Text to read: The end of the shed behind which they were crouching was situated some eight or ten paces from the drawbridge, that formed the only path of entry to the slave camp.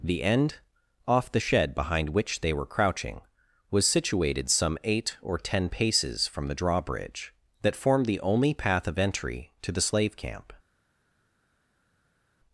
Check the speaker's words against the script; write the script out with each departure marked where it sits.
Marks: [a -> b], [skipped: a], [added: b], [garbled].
The end [of -> off] the shed behind which they were crouching was situated some eight or ten paces from the drawbridge, that formed the only path of entry to the slave camp.